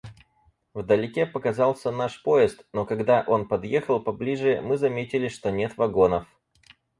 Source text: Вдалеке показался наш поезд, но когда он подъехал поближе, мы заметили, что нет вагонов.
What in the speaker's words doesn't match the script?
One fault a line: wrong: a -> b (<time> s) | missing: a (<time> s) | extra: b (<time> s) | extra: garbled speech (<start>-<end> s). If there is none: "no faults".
no faults